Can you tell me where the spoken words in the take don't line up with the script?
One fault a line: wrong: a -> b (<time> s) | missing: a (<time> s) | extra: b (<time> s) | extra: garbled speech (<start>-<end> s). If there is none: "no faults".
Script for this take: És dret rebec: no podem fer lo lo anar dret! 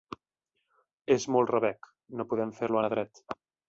wrong: dret -> molt (1.4 s)
missing: lo (2.8 s)